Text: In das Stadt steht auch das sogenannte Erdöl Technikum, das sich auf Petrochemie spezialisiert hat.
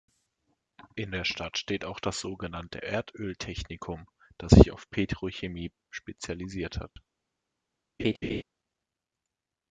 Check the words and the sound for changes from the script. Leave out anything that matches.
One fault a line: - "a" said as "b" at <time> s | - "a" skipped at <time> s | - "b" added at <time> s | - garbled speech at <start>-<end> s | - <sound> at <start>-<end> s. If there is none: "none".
- "das" said as "der" at 1.1 s
- dropout at 6.9-7.0 s
- laugh at 8.0-8.4 s